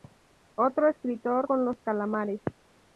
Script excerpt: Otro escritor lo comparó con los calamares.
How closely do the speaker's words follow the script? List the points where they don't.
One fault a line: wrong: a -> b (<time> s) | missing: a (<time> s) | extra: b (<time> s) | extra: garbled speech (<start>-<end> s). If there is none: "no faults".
missing: lo comparó (1.5 s)